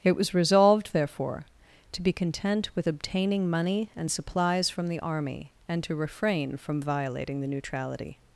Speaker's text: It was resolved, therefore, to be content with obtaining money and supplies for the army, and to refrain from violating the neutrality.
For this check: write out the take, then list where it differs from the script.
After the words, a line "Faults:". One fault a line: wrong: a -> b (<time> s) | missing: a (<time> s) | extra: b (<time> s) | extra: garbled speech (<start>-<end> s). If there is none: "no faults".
It was resolved, therefore, to be content with obtaining money and supplies from the army, and to refrain from violating the neutrality.
Faults:
wrong: for -> from (4.7 s)